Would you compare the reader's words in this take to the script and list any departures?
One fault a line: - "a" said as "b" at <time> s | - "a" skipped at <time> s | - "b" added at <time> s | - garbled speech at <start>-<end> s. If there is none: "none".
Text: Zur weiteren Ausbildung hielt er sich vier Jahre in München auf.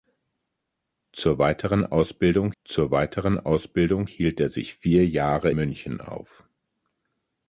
- "zur weiteren Ausbildung" added at 2.6 s
- "in" skipped at 5.5 s